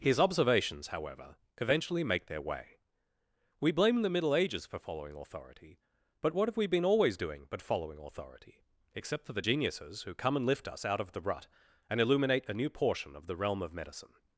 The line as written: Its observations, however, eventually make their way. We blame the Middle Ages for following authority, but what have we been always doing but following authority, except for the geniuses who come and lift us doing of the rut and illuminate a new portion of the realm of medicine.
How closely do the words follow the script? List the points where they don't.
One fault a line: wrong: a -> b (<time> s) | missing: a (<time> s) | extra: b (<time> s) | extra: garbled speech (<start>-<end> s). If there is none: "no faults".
wrong: Its -> His (0.0 s)
wrong: doing -> out (10.8 s)